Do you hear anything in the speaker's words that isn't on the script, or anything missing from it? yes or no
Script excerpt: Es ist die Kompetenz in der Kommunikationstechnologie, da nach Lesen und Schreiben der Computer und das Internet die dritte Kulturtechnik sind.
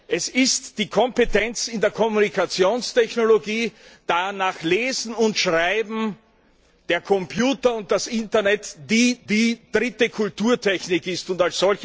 yes